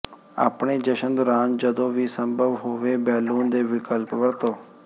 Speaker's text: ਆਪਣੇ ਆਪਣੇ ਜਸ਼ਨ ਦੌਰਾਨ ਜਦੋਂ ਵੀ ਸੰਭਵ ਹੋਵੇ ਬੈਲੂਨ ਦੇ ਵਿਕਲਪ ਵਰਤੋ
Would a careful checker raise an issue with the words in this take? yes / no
yes